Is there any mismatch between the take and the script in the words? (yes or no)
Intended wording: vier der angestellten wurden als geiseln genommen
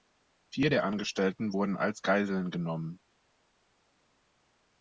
no